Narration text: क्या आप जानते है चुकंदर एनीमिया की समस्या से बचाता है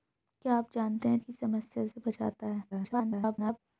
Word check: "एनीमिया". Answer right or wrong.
wrong